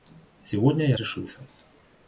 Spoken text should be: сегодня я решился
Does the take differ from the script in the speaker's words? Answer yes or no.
no